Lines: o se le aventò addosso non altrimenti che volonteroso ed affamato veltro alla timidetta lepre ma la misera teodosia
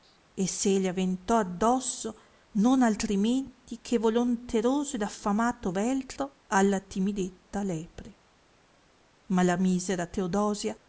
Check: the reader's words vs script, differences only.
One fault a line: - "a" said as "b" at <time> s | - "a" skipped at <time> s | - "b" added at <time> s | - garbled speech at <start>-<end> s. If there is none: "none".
- "o" said as "e" at 0.3 s